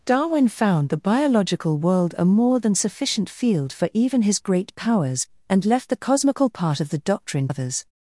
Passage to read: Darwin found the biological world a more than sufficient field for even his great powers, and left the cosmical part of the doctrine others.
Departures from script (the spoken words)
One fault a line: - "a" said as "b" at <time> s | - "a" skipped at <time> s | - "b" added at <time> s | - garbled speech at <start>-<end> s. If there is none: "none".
none